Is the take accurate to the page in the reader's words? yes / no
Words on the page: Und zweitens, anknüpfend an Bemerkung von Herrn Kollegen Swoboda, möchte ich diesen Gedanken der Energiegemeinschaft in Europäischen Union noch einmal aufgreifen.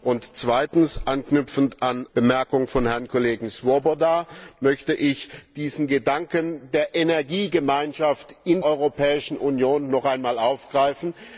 yes